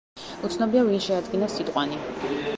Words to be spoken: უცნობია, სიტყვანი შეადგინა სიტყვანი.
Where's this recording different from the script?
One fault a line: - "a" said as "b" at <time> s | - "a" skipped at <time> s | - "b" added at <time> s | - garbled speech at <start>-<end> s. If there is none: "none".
- "სიტყვანი" said as "ვინ" at 0.9 s